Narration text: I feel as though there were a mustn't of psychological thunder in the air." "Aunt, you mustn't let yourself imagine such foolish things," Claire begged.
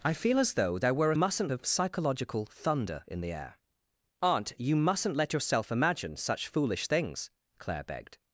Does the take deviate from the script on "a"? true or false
false